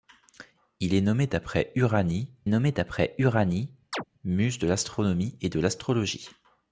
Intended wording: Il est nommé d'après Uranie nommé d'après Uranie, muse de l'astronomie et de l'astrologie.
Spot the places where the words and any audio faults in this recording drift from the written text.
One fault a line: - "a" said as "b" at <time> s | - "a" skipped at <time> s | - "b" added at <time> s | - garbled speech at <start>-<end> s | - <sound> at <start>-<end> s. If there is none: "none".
- chirp at 3.9-4.0 s